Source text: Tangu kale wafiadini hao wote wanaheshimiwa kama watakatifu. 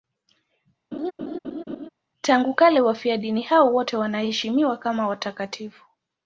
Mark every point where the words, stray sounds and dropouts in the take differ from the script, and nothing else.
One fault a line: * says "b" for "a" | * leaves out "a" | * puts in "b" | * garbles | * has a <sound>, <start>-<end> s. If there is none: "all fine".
* has a laugh, 0.9-1.9 s